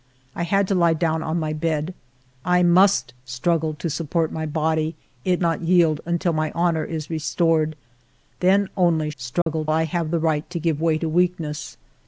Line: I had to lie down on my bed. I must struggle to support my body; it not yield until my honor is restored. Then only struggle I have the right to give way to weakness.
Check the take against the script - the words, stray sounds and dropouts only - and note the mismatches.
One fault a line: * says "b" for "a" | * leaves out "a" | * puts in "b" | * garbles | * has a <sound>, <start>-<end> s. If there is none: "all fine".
* has a dropout, 9.4-9.5 s